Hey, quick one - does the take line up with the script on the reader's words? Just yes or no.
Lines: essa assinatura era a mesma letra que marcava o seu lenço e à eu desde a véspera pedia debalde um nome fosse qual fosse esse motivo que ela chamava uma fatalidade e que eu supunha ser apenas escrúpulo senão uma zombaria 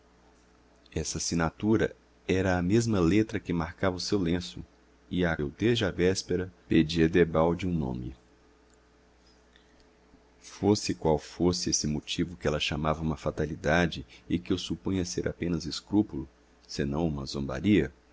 yes